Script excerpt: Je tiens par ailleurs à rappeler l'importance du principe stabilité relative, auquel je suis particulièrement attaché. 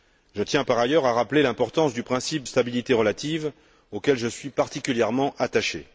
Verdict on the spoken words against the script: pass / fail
pass